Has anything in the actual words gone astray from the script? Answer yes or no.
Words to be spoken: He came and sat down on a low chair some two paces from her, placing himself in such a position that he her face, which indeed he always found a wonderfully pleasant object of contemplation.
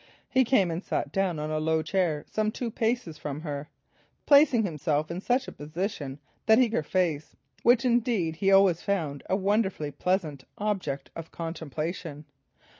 no